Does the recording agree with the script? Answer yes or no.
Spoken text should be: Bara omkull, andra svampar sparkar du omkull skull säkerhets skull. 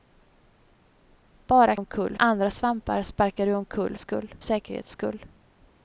yes